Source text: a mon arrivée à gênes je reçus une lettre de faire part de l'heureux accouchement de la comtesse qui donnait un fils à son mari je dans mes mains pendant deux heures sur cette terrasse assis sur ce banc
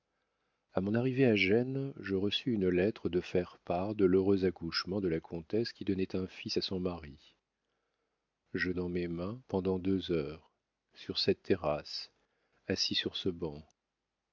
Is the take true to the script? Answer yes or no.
yes